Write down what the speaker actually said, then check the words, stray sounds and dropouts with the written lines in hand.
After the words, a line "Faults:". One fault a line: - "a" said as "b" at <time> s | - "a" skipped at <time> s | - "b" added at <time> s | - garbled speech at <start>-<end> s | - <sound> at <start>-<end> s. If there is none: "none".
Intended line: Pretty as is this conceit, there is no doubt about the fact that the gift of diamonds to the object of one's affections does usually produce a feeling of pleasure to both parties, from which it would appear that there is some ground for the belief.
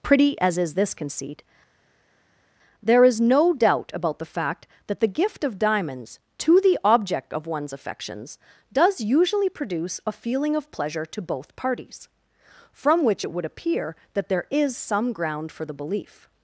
Pretty as is this conceit, there is no doubt about the fact that the gift of diamonds to the object of one's affections does usually produce a feeling of pleasure to both parties, from which it would appear that there is some ground for the belief.
Faults:
none